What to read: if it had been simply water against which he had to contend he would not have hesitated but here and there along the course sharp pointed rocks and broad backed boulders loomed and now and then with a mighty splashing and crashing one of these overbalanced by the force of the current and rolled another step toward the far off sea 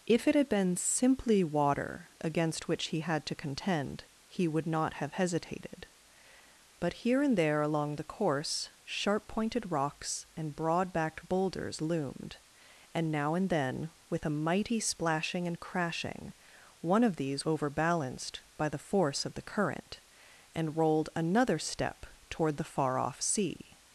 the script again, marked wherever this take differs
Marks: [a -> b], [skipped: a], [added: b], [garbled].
if it had been simply water against which he had to contend he would not have hesitated but here and there along the course sharp pointed rocks and broad backed boulders loomed and now and then with a mighty splashing and crashing one of these overbalanced by the force of the current and rolled another step toward the far off sea